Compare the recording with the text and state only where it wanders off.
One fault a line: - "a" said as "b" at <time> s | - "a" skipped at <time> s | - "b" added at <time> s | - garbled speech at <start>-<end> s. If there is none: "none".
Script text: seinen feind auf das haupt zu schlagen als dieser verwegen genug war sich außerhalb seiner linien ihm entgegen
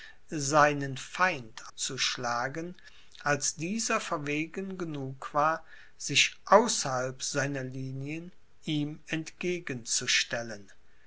- "auf das haupt" skipped at 1.7 s